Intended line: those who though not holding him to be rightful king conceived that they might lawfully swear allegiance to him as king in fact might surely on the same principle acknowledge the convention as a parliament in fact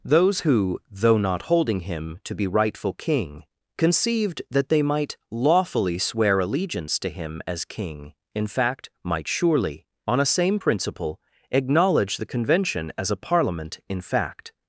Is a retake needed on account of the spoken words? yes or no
yes